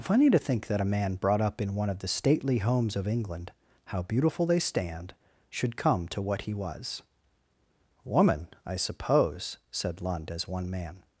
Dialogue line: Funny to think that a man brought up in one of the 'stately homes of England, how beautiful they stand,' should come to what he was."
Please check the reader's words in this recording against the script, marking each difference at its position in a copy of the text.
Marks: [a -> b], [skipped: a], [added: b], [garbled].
Funny to think that a man brought up in one of the 'stately homes of England, how beautiful they stand,' should come to what he was." [added: Woman I suppose said Lund as one man]